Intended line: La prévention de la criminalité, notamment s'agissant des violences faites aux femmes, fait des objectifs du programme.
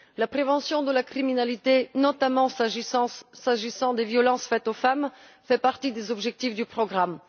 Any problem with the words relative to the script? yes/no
yes